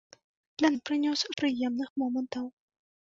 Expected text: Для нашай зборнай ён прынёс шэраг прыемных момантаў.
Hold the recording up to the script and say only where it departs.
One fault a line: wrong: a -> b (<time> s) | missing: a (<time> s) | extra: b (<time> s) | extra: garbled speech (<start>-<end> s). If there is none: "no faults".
missing: нашай зборнай (0.7 s)
missing: шэраг (1.2 s)